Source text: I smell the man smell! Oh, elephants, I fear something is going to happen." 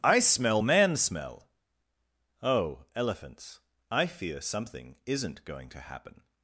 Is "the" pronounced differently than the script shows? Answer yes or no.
yes